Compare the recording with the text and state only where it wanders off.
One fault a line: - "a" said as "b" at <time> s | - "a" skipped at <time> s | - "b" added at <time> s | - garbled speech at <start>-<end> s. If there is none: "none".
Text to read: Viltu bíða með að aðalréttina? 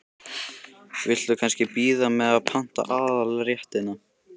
- "kannski" added at 1.4 s
- "panta" added at 2.5 s